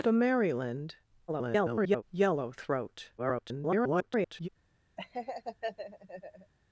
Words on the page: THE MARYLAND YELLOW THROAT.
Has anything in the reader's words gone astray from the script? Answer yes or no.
yes